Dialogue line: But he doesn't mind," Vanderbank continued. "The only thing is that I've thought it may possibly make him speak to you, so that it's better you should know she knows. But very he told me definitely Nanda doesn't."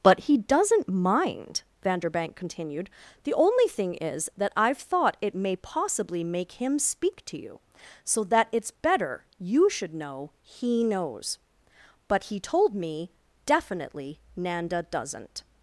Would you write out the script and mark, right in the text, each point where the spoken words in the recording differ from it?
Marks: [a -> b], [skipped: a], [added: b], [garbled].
But he doesn't mind," Vanderbank continued. "The only thing is that I've thought it may possibly make him speak to you, so that it's better you should know [she -> he] knows. But [skipped: very] he told me definitely Nanda doesn't."